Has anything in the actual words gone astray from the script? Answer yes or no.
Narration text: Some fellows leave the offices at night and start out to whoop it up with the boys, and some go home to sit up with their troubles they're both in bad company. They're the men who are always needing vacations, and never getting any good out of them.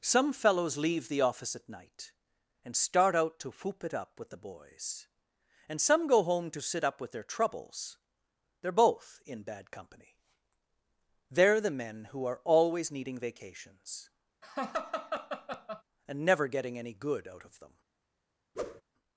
yes